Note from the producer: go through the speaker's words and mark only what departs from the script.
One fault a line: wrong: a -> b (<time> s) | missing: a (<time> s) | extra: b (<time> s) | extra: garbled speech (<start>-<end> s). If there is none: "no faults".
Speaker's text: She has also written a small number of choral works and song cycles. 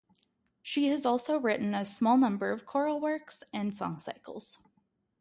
no faults